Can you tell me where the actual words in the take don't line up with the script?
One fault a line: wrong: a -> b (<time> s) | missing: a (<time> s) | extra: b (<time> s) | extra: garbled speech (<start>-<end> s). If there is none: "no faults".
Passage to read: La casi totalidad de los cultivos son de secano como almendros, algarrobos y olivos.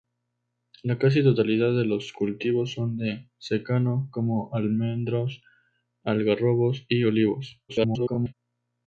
extra: garbled speech (7.7-8.3 s)